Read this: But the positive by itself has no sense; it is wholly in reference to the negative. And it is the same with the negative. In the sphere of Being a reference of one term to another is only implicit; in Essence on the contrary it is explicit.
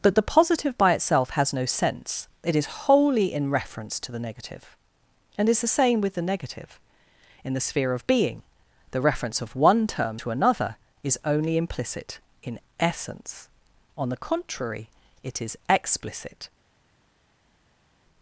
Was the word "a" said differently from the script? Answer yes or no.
yes